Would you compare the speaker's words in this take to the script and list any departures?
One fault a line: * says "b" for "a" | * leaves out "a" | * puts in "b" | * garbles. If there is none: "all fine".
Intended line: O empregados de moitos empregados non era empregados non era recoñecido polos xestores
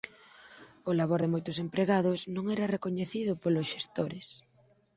* says "labor" for "empregados"
* leaves out "empregados non era"